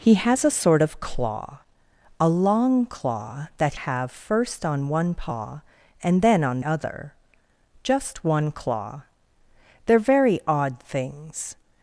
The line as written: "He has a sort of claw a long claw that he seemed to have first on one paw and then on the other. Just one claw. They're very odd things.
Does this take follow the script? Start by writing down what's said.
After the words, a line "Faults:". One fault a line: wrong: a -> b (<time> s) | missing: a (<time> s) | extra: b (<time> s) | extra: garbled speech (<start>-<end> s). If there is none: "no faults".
"He has a sort of claw a long claw that have first on one paw and then on other. Just one claw. They're very odd things.
Faults:
missing: he seemed to (3.8 s)
missing: the (6.6 s)